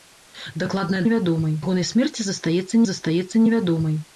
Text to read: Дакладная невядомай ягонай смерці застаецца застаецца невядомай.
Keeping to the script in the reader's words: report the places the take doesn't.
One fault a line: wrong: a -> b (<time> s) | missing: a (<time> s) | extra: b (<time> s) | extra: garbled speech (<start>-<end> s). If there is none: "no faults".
no faults